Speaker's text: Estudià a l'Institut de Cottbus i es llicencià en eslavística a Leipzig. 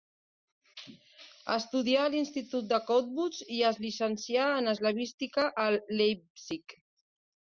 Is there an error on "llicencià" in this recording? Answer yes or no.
no